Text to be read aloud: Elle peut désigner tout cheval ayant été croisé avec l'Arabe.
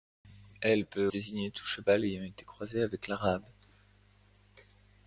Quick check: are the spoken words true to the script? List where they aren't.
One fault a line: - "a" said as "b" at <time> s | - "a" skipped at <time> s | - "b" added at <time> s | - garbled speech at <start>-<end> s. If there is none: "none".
none